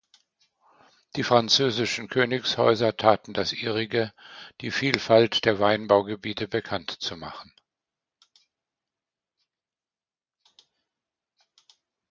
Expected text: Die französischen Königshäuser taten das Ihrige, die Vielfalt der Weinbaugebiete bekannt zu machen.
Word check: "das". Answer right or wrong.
right